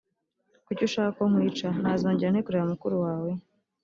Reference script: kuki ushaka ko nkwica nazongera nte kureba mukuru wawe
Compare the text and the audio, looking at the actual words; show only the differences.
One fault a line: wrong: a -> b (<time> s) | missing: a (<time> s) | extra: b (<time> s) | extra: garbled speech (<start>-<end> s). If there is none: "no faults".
no faults